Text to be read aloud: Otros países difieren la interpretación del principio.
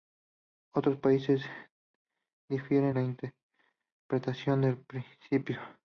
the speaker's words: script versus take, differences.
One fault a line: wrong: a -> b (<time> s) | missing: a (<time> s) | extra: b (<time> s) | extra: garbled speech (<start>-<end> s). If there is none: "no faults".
no faults